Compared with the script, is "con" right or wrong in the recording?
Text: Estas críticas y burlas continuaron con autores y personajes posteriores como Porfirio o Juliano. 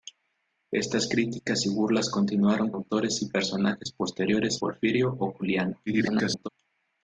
wrong